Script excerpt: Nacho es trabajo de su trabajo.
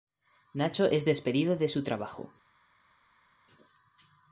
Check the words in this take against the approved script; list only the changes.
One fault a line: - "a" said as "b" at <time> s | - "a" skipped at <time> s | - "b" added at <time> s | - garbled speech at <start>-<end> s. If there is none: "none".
- "trabajo" said as "despedido" at 1.0 s